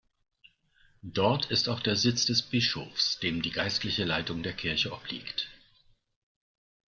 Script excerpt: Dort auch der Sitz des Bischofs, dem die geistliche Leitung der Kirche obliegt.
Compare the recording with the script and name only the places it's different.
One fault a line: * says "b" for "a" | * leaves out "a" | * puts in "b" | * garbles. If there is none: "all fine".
* puts in "ist"